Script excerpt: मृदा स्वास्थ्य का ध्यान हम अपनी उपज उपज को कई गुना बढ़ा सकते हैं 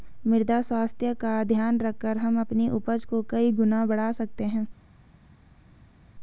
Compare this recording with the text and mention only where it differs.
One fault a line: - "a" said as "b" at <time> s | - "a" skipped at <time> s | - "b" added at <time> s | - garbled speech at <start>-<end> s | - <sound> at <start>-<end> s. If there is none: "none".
- "रखकर" added at 1.8 s
- "उपज" skipped at 3.0 s